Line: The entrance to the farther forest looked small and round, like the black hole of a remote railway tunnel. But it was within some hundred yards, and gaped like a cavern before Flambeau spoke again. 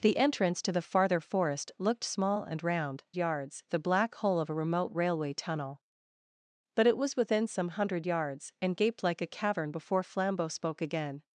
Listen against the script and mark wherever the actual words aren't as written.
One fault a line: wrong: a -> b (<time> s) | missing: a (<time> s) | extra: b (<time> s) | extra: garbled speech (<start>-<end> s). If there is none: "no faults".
wrong: like -> yards (3.2 s)